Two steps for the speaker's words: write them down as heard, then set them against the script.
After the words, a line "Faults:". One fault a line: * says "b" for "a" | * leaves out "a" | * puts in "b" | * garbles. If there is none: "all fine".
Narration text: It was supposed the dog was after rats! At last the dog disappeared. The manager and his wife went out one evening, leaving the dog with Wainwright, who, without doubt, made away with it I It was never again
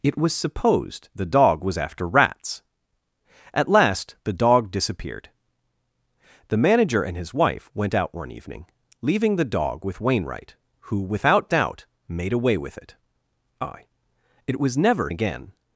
It was supposed the dog was after rats! At last the dog disappeared. The manager and his wife went out one evening, leaving the dog with Wainwright, who, without doubt, made away with it I It was never again
Faults:
all fine